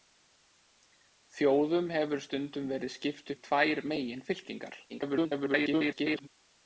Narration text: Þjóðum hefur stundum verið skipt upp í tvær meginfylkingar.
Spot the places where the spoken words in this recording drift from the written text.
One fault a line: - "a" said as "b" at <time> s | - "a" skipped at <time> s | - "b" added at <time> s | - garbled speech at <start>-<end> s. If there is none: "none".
- "upp" skipped at 3.3 s
- garbled speech at 4.9-6.3 s